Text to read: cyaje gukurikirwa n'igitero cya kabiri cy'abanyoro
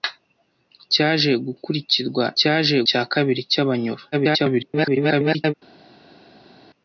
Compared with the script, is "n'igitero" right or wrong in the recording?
wrong